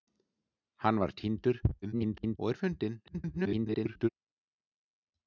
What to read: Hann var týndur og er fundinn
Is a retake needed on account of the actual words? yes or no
yes